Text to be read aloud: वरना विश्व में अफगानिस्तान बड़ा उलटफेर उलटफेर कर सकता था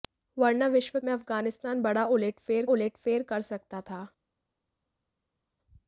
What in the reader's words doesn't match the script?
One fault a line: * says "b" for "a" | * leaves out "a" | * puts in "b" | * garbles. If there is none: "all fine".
all fine